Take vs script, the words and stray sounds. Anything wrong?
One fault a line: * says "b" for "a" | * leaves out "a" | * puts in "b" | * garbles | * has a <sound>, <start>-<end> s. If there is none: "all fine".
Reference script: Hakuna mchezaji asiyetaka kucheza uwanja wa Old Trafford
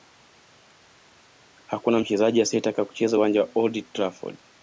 all fine